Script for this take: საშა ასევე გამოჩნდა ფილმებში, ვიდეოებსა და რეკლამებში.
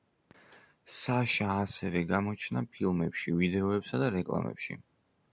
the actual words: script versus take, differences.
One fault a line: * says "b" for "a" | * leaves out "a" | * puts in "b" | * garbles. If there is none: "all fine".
all fine